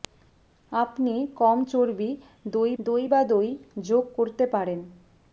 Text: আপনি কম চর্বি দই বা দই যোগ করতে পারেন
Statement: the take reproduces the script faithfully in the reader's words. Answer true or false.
false